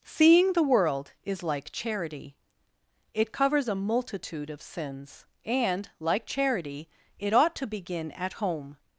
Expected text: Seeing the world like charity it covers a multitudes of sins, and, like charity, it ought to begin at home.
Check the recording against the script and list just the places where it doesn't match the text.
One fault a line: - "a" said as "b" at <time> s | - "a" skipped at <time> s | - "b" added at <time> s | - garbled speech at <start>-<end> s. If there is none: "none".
- "is" added at 1.2 s
- "multitudes" said as "multitude" at 3.8 s